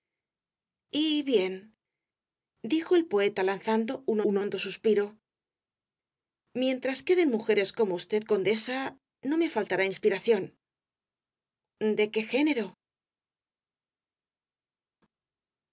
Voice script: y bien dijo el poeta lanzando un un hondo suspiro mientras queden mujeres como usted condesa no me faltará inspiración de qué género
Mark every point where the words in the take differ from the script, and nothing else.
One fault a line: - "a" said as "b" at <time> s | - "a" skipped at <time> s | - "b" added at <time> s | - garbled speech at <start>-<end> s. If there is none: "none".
none